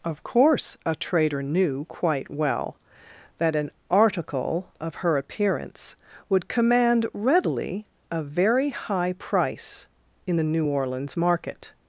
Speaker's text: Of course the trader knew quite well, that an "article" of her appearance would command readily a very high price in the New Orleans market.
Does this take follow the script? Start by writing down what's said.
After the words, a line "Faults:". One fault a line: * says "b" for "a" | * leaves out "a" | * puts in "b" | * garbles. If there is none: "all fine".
Of course a trader knew quite well, that an "article" of her appearance would command readily a very high price in the New Orleans market.
Faults:
* says "a" for "the"